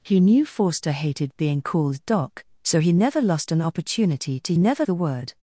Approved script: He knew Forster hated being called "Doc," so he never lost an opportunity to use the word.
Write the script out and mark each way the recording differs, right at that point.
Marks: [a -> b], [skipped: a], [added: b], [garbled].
He knew Forster hated being called "Doc," so he never lost an opportunity to [use -> never] the word.